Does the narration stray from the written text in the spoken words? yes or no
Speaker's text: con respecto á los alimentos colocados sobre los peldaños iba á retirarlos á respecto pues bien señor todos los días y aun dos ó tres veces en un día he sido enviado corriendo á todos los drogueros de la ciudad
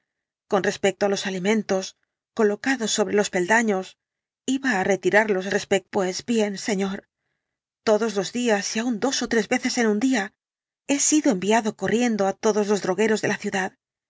no